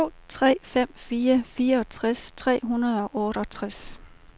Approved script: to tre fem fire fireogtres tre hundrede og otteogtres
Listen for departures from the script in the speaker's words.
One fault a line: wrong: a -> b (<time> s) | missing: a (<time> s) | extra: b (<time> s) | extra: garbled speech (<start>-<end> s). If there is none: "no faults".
no faults